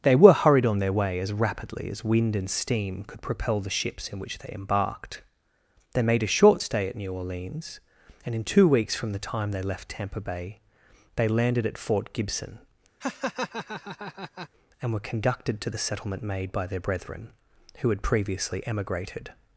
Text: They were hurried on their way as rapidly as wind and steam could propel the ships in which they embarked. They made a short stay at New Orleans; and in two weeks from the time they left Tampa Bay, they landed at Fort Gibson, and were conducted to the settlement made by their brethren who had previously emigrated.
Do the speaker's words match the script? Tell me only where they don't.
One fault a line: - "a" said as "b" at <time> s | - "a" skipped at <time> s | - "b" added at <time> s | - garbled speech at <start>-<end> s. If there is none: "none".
none